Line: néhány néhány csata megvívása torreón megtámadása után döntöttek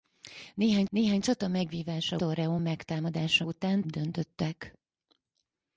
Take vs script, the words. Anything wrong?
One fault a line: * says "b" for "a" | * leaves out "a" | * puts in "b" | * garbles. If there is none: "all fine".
all fine